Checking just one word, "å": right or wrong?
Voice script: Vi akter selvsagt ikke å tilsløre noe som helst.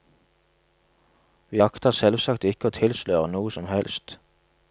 right